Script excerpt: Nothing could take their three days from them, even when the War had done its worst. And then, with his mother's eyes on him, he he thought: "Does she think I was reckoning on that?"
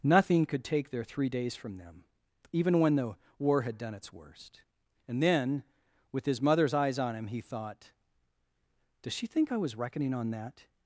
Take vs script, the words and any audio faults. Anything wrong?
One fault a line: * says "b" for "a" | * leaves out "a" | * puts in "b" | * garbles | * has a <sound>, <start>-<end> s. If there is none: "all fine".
* leaves out "he"